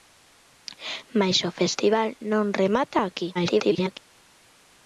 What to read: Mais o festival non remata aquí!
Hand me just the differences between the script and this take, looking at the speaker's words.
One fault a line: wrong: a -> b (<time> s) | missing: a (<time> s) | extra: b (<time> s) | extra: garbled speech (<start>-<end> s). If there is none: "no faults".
extra: garbled speech (3.3-4.0 s)